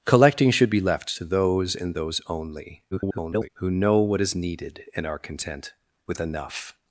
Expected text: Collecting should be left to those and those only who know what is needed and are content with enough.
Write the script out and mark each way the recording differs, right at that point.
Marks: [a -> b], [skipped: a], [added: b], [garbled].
Collecting should be left to those and those only [garbled] who know what is needed and are content with enough.